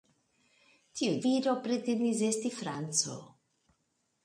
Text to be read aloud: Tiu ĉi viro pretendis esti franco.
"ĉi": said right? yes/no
no